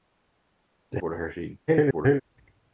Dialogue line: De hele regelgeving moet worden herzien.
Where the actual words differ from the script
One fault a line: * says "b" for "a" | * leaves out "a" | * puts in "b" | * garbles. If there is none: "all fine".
* leaves out "hele regelgeving moet"
* garbles